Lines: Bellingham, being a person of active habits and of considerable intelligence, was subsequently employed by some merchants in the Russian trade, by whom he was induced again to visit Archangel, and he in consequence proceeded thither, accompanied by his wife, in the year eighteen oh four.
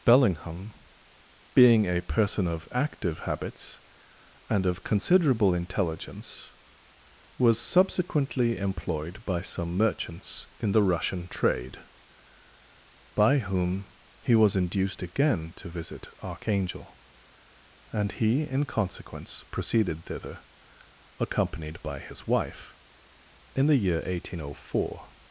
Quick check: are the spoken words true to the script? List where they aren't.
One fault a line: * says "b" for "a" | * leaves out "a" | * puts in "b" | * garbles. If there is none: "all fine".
all fine